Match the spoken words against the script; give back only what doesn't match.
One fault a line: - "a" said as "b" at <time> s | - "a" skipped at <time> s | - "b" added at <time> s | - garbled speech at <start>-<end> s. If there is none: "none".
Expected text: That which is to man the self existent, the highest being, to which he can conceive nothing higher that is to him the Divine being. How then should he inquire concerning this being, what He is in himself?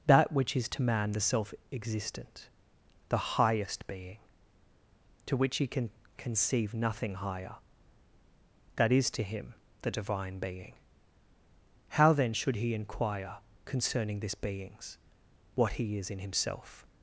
- "being" said as "beings" at 14.3 s